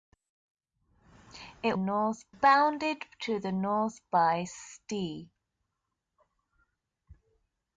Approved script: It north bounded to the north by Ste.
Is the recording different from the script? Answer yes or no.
no